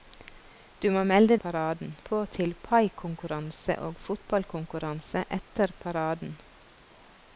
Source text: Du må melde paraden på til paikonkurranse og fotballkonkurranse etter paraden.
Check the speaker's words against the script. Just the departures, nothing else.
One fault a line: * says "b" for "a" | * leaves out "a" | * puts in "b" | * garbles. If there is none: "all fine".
all fine